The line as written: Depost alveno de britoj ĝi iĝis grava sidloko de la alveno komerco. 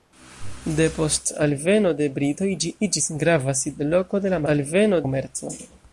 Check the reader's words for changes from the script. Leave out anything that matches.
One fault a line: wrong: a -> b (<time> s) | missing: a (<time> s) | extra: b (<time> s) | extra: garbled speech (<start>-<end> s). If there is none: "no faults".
no faults